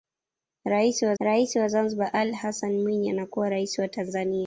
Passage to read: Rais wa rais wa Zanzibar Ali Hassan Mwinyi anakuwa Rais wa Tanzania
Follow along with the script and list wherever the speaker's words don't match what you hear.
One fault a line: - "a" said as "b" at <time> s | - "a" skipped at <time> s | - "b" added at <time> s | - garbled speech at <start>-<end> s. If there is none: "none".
none